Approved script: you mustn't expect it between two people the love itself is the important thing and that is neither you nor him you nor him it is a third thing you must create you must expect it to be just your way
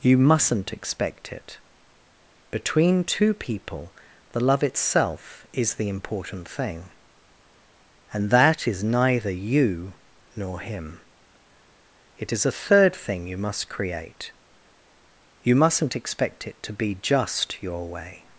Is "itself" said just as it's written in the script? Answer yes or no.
yes